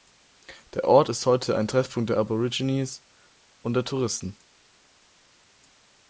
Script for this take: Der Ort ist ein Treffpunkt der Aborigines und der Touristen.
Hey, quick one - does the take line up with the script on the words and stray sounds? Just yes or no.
no